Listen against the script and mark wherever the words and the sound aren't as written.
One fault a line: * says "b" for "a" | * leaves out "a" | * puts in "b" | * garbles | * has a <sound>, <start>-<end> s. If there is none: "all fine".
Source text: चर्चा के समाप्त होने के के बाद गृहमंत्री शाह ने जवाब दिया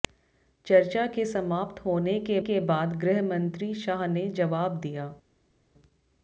all fine